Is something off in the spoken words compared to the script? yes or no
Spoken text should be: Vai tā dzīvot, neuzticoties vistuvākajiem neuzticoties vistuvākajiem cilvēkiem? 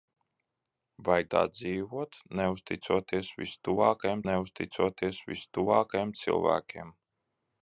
no